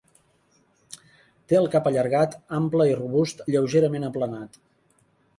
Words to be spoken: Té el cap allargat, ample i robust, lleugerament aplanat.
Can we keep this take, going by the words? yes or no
yes